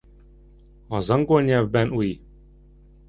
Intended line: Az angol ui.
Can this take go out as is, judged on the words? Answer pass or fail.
fail